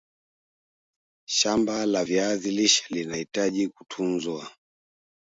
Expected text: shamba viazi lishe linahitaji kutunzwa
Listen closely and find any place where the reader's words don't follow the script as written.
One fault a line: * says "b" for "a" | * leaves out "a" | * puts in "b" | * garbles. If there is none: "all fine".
* puts in "la"